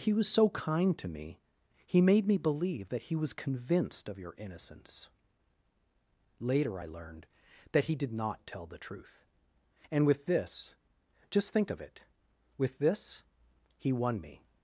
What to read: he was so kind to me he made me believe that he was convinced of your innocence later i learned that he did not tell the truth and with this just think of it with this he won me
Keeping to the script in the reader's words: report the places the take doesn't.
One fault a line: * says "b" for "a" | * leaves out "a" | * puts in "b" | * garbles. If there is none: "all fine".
all fine